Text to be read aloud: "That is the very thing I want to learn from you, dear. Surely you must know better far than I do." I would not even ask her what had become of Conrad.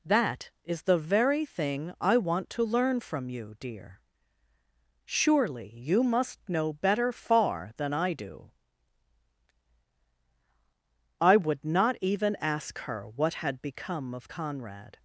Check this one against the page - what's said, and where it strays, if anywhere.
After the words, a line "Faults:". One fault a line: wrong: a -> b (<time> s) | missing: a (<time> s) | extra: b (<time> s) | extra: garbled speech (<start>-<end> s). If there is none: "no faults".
"That is the very thing I want to learn from you, dear. Surely you must know better far than I do." I would not even ask her what had become of Conrad.
Faults:
no faults